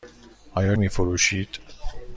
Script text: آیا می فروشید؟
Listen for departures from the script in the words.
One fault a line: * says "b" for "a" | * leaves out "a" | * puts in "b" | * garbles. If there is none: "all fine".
all fine